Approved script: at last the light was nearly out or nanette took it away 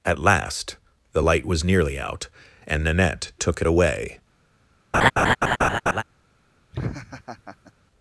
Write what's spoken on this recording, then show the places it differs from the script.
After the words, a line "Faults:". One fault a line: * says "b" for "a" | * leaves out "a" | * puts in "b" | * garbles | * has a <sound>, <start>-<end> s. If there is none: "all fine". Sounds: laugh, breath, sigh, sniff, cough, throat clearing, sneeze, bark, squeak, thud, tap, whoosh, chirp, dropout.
at last the light was nearly out and nanette took it away
Faults:
* says "and" for "or"
* has a laugh, 4.9-6.0 s
* has a laugh, 6.7-7.7 s